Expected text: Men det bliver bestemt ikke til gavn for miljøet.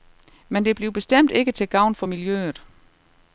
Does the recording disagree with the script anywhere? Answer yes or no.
no